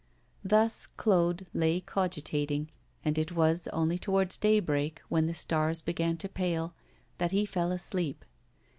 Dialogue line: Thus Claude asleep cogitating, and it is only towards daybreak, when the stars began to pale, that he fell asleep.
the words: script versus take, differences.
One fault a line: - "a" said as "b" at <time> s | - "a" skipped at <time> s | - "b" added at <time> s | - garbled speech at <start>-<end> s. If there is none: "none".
- "asleep" said as "lay" at 1.5 s
- "is" said as "was" at 3.3 s